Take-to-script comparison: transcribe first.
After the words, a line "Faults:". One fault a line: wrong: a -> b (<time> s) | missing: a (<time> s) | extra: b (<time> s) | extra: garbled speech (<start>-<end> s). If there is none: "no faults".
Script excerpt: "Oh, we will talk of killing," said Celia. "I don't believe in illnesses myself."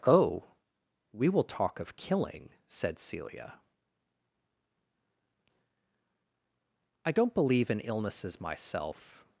"Oh, we will talk of killing," said Celia. "I don't believe in illnesses myself."
Faults:
no faults